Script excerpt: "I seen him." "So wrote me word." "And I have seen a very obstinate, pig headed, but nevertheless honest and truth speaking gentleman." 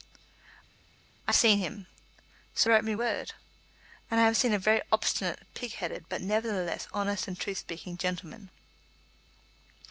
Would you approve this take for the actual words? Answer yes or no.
yes